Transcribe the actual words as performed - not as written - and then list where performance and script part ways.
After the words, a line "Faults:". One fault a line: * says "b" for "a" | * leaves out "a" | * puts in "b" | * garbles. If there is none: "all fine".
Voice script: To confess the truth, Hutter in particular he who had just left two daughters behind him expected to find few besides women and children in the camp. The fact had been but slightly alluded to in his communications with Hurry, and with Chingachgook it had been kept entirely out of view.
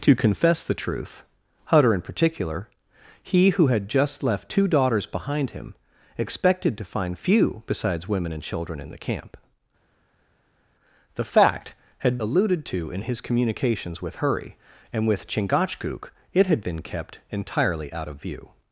To confess the truth, Hutter in particular he who had just left two daughters behind him expected to find few besides women and children in the camp. The fact had alluded to in his communications with Hurry, and with Chingachgook it had been kept entirely out of view.
Faults:
* leaves out "been but slightly"